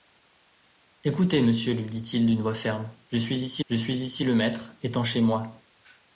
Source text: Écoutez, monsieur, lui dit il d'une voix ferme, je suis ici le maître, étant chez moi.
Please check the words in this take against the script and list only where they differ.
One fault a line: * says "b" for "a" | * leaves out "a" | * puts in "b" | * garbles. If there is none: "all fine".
* puts in "je suis ici"